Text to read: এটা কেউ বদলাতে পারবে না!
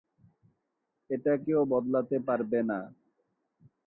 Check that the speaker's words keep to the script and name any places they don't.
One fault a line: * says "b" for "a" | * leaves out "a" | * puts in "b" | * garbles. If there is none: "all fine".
all fine